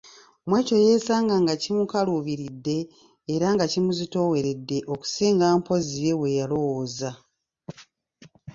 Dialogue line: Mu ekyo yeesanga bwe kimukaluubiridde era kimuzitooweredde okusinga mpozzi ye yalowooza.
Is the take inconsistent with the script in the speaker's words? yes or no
yes